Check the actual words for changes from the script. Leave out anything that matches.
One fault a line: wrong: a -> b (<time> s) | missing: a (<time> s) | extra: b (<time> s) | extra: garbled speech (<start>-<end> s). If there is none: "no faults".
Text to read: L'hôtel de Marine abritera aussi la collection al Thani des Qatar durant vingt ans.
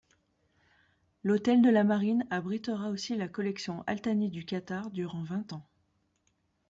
extra: la (1.7 s)
wrong: des -> du (4.3 s)